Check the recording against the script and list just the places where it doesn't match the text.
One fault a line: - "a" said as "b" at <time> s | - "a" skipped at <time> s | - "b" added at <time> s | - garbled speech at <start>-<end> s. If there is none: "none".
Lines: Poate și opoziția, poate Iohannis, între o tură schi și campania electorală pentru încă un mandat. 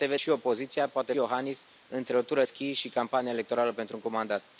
none